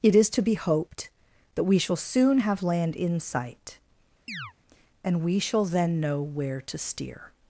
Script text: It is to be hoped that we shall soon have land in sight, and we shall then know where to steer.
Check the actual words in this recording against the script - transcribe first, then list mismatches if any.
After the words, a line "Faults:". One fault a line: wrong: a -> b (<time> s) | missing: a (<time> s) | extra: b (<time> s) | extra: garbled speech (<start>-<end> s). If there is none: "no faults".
It is to be hoped that we shall soon have land in sight, and we shall then know where to steer.
Faults:
no faults